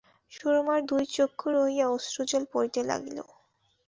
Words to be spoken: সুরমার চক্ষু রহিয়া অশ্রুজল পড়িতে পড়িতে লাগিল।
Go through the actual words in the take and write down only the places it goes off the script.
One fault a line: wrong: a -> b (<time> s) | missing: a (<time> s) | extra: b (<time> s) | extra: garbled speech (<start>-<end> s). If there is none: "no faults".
extra: দুই (0.9 s)
missing: পড়িতে (2.8 s)